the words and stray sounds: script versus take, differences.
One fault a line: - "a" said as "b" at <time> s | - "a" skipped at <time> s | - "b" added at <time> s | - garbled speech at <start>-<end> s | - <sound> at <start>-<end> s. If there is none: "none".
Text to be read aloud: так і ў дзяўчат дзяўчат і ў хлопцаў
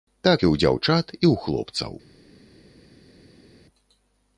- "дзяўчат" skipped at 1.1 s